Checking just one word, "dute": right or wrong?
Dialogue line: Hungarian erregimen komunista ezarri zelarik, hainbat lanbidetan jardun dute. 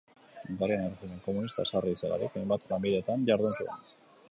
wrong